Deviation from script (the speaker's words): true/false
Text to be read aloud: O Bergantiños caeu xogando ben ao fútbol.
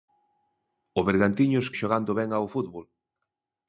true